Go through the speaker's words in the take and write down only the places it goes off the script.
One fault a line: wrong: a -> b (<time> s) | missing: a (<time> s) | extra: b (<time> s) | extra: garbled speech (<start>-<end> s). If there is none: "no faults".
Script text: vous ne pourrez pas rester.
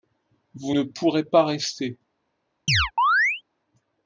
no faults